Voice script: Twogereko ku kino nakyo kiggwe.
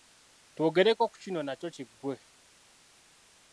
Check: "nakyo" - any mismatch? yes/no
no